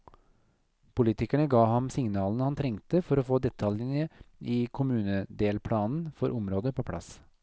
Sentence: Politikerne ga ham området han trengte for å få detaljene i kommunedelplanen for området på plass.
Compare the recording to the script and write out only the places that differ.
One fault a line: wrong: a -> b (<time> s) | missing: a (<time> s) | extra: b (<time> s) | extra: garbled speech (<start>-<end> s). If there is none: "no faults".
wrong: området -> signalene (1.9 s)